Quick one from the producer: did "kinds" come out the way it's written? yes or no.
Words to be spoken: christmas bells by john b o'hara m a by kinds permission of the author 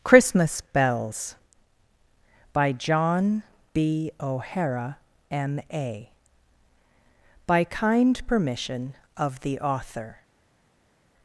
no